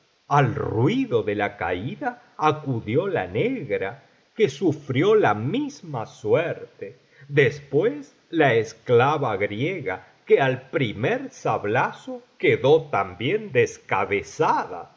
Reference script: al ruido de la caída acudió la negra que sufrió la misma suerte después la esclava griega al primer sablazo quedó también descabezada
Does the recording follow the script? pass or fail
fail